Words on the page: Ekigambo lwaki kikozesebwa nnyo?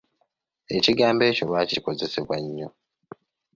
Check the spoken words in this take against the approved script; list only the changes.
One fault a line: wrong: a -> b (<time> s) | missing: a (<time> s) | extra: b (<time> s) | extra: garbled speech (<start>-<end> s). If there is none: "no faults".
extra: ekyo (1.3 s)